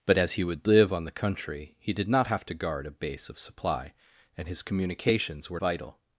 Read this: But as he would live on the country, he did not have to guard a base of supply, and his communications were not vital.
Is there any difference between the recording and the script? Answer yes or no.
yes